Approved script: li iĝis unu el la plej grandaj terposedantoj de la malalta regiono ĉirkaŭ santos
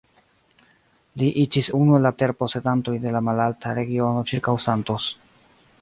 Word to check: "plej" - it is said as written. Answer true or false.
false